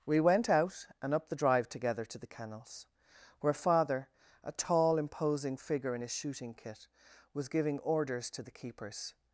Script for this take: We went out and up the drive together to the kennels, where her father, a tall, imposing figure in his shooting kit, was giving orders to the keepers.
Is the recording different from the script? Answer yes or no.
yes